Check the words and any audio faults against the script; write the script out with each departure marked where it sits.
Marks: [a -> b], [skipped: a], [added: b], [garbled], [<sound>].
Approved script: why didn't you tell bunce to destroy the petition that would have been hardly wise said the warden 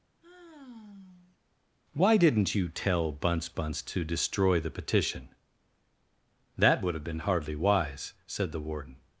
[sigh] why didn't you tell bunce [added: bunce] to destroy the petition that would have been hardly wise said the warden